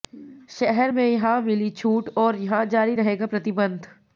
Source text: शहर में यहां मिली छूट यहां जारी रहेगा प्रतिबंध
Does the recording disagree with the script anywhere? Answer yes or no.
yes